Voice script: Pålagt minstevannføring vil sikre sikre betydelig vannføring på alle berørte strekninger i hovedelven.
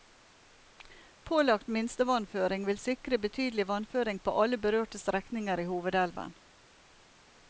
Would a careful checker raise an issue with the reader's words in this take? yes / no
yes